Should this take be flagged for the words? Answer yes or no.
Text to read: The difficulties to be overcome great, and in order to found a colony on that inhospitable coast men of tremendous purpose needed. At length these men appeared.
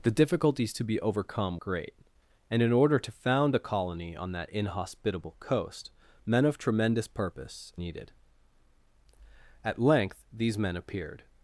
no